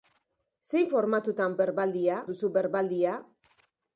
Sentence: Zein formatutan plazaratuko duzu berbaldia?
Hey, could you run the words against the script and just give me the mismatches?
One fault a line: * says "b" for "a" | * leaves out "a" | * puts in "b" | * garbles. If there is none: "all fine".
* says "berbaldia" for "plazaratuko"